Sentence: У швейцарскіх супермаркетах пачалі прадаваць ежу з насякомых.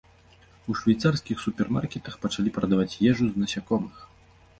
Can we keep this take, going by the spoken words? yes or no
yes